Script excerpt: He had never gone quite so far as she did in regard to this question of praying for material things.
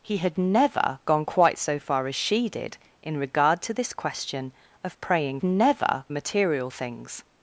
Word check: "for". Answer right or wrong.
wrong